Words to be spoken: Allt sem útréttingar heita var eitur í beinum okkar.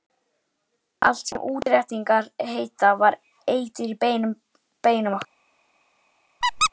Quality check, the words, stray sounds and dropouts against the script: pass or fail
fail